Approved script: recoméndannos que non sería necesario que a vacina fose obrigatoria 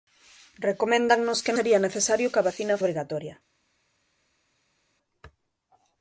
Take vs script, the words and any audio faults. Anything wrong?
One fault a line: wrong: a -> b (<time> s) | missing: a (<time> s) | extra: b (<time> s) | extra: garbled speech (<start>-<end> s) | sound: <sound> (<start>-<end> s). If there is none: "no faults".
missing: non (1.6 s)
missing: fose (2.8 s)